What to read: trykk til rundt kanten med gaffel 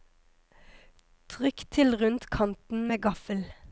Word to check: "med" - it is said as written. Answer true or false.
true